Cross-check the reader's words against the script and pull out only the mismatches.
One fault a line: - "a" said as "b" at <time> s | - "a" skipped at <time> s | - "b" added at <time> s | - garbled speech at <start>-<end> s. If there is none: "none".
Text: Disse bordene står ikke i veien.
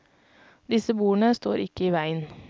none